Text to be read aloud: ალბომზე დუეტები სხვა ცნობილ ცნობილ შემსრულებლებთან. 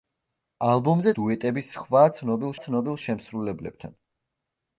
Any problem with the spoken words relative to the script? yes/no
no